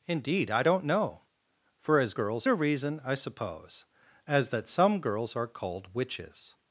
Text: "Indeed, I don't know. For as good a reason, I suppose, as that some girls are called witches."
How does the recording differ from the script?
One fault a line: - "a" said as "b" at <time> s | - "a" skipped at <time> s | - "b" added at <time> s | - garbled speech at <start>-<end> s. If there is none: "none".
- "good" said as "girls" at 2.1 s